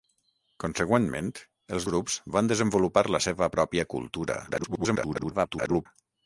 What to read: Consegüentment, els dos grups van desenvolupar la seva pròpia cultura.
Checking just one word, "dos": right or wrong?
wrong